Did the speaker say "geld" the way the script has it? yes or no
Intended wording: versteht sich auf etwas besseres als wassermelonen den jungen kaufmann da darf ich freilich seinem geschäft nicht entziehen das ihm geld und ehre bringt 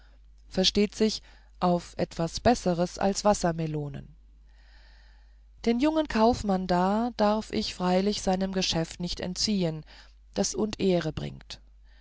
no